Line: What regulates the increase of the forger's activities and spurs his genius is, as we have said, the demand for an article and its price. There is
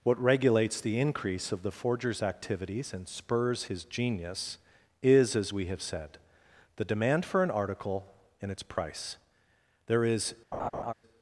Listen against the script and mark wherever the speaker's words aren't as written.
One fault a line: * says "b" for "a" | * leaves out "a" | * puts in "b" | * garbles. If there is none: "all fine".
all fine